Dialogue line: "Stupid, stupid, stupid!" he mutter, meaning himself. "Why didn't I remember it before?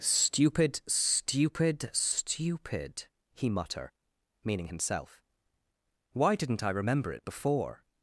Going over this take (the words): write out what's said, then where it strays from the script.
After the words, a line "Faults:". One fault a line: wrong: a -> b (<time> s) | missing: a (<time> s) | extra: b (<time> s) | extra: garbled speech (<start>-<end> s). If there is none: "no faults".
"Stupid, stupid, stupid!" he mutter, meaning himself. "Why didn't I remember it before?
Faults:
no faults